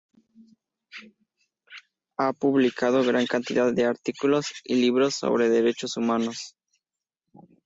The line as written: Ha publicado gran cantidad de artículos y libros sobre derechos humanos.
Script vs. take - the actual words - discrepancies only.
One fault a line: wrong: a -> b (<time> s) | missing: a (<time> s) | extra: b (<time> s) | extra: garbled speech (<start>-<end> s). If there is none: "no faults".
no faults